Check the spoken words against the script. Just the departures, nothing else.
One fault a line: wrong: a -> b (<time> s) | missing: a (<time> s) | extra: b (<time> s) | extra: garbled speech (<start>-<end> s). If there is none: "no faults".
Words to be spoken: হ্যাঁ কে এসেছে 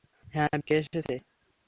no faults